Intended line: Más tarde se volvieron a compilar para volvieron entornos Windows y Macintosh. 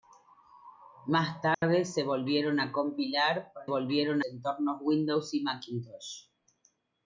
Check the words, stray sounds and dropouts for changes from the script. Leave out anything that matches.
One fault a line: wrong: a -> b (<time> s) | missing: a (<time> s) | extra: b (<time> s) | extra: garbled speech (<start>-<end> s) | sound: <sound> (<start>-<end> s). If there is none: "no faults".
sound: dropout (1.5-1.6 s)